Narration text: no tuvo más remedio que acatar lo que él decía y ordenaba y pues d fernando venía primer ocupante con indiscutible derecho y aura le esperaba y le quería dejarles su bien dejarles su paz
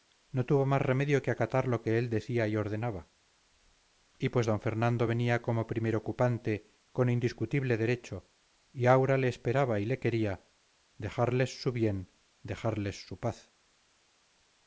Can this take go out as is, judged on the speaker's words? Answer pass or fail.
fail